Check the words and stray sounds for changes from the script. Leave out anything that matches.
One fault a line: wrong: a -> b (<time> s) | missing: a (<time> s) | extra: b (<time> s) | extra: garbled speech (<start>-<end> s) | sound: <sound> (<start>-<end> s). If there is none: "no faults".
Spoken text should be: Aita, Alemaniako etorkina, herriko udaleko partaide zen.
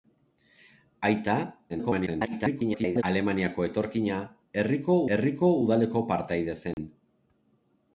extra: garbled speech (1.7-3.0 s)
extra: herriko (5.2 s)
sound: dropout (6.7-6.8 s)